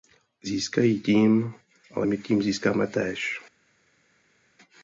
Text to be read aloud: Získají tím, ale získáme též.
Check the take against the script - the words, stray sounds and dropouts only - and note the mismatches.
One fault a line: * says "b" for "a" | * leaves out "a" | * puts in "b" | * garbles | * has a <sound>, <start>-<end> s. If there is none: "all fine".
* puts in "my tím"